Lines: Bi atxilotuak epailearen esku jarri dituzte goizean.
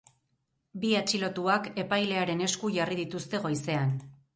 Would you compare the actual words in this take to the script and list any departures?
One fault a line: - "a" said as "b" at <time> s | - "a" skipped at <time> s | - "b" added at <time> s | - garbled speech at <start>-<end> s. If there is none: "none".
none